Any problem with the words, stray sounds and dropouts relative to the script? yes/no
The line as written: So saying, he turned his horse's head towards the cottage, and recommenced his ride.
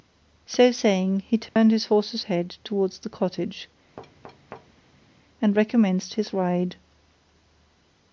yes